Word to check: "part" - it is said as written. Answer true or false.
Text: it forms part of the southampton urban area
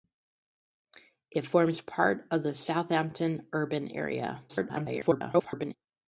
true